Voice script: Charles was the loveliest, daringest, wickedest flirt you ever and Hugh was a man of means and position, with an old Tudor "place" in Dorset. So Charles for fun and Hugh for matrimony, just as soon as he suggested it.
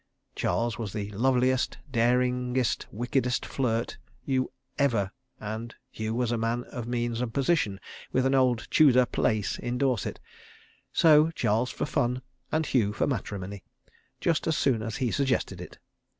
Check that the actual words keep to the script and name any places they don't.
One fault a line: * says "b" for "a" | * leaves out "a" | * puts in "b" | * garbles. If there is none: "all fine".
all fine